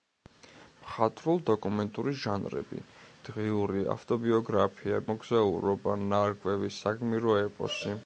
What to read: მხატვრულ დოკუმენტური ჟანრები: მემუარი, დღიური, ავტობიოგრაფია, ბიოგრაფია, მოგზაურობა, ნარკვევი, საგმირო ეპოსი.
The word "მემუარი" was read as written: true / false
false